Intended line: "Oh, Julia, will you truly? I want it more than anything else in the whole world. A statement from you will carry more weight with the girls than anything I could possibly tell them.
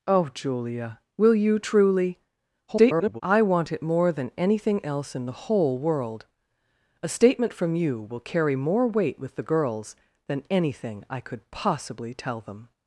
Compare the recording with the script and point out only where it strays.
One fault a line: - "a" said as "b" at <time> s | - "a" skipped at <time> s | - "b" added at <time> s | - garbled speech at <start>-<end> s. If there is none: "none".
- garbled speech at 2.7-3.2 s